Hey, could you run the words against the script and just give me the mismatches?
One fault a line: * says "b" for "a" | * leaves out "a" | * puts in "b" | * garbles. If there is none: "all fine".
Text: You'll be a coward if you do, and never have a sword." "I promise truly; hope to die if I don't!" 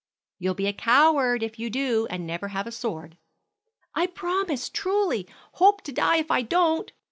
all fine